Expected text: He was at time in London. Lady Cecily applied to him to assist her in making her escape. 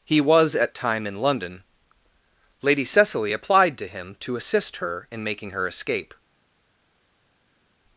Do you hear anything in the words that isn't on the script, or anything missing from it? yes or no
no